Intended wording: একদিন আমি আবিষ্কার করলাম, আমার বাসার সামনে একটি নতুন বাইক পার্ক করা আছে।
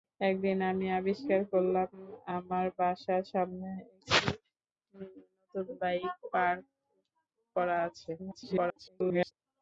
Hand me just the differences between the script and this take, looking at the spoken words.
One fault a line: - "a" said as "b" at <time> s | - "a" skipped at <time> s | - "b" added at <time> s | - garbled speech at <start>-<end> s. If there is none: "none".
- garbled speech at 8.2-9.3 s